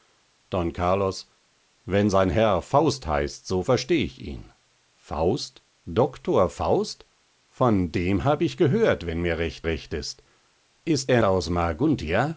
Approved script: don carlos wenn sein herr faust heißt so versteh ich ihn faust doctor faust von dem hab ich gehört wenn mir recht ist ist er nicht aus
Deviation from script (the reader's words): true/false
true